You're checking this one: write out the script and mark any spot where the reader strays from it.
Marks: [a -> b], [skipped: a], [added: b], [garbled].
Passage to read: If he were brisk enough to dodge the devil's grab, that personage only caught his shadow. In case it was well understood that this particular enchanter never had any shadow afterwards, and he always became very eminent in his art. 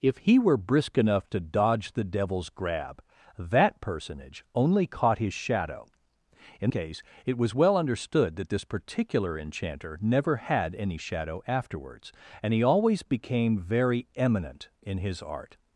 If he were brisk enough to dodge the devil's grab, that personage only caught his shadow. In case it was well understood that this particular enchanter never had any shadow afterwards, and he always became very eminent in his art.